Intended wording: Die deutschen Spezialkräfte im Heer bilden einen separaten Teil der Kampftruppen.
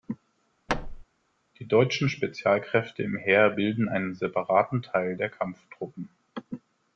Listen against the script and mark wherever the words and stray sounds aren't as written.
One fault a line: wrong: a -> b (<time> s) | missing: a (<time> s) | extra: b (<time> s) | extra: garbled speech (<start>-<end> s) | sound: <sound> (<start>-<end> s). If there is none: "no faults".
sound: thud (0.7-1.0 s)